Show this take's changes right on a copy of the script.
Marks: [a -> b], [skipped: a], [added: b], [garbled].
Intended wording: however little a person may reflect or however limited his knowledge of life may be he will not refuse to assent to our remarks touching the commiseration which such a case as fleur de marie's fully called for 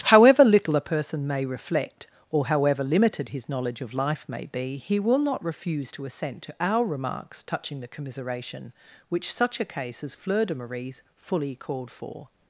however little a person may reflect or however limited his knowledge of life may be he will not refuse to assent to our remarks touching the commiseration which such a case as fleur de marie's fully called for